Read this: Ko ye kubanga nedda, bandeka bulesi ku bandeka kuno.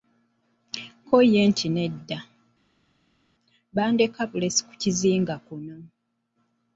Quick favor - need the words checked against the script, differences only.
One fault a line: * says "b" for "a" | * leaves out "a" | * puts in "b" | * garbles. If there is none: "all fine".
* says "nti" for "kubanga"
* says "kizinga" for "bandeka"